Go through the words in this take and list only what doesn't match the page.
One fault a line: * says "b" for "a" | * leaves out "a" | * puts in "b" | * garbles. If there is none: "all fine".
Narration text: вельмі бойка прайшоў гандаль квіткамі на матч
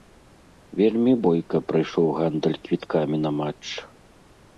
all fine